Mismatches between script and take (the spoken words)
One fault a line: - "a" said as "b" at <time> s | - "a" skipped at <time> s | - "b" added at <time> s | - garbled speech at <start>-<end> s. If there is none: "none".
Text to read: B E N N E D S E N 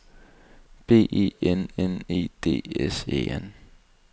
none